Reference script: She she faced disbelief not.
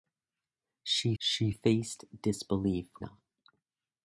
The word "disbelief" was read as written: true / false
true